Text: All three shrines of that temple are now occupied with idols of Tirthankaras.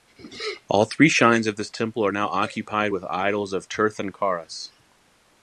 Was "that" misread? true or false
true